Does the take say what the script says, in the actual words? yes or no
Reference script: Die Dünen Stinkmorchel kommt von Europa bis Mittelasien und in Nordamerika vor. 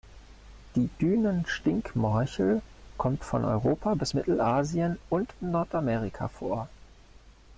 yes